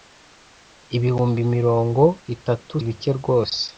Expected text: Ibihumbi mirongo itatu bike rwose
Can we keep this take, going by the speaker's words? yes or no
yes